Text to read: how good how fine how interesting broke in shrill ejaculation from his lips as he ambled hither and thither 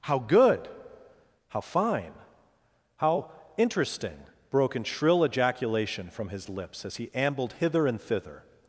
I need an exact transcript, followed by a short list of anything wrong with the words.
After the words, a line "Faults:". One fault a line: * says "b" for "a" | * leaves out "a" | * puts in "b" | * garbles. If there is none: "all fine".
how good how fine how interesting broke in shrill ejaculation from his lips as he ambled hither and thither
Faults:
all fine